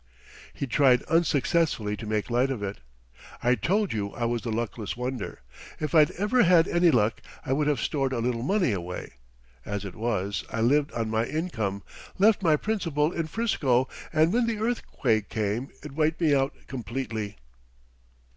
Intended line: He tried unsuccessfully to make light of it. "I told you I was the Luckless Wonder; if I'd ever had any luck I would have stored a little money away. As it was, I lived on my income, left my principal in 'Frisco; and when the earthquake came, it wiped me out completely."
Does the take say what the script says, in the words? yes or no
yes